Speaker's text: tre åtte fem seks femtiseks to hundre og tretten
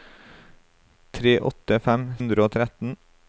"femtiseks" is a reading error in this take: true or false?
true